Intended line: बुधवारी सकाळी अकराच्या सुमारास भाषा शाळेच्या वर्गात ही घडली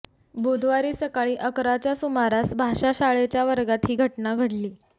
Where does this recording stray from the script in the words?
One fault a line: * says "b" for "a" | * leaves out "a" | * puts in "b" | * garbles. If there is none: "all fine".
* puts in "घटना"